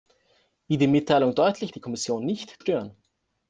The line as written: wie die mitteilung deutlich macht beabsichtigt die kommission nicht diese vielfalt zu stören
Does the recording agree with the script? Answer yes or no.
no